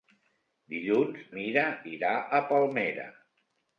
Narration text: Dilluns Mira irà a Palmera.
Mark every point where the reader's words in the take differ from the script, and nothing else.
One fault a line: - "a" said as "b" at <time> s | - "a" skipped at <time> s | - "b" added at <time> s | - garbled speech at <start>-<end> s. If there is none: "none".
none